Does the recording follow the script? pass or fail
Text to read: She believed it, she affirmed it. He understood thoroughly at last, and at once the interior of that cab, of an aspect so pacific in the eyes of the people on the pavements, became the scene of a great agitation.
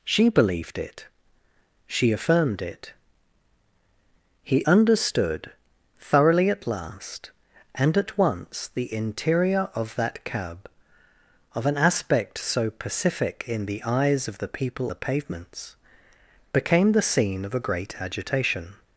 fail